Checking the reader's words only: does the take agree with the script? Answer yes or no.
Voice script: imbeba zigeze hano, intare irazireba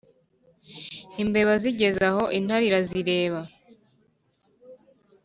no